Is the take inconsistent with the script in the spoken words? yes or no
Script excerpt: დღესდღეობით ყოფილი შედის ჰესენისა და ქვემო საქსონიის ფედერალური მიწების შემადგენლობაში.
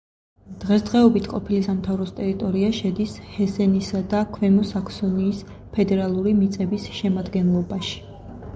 yes